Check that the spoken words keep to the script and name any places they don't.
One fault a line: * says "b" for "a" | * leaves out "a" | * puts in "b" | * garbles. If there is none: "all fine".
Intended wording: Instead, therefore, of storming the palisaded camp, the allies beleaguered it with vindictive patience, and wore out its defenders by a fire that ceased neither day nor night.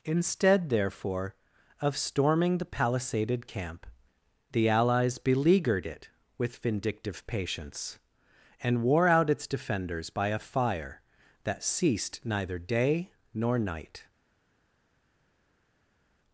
all fine